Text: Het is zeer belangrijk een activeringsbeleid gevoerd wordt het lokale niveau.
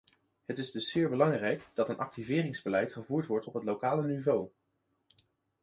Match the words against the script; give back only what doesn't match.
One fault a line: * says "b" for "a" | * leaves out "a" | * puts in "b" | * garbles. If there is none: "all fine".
* puts in "dus"
* puts in "dat"
* puts in "op"